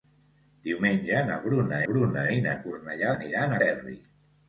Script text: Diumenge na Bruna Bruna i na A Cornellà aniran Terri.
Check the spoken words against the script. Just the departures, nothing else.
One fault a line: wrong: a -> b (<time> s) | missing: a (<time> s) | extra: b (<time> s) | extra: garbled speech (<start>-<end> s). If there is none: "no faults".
no faults